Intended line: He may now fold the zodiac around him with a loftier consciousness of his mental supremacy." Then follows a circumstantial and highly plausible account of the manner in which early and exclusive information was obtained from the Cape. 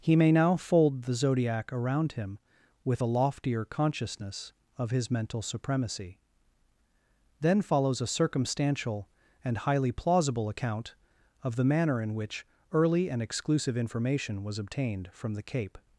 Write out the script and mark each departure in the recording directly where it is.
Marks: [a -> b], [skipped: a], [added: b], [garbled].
He may now fold the zodiac around him with a loftier consciousness of his mental supremacy." Then follows a circumstantial and highly plausible account of the manner in which early and exclusive information was obtained from the Cape.